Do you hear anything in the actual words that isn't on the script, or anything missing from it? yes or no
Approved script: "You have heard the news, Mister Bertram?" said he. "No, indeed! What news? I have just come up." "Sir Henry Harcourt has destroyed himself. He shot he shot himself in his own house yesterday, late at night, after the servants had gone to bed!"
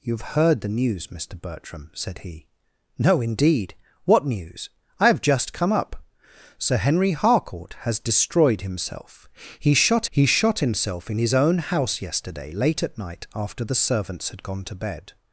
no